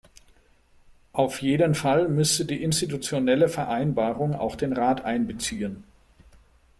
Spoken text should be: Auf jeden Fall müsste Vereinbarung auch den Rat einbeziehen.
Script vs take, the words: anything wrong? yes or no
yes